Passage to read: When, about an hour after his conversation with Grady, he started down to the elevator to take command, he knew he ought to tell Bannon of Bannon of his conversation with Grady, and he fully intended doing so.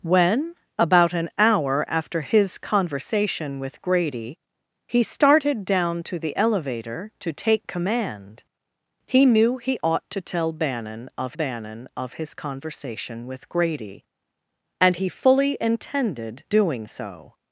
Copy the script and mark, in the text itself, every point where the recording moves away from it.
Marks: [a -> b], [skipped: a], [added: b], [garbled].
When, about an hour after his conversation with Grady, he started down to the elevator to take command, he knew he ought to tell Bannon of Bannon of his conversation with Grady, and he fully intended doing so.